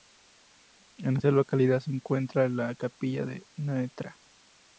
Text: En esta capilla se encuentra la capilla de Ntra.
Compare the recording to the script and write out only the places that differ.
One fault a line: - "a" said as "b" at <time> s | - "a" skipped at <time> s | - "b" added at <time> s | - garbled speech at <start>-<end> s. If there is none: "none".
- "capilla" said as "localidad" at 1.3 s